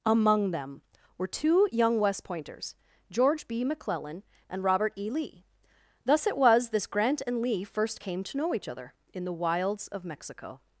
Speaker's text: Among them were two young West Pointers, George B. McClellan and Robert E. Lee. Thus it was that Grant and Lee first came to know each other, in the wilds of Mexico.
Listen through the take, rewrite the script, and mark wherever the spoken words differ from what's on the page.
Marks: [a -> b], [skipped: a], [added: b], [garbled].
Among them were two young West Pointers, George B. McClellan and Robert E. Lee. Thus it was [that -> this] Grant and Lee first came to know each other, in the wilds of Mexico.